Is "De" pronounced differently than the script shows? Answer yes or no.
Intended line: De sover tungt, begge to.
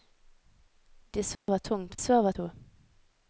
no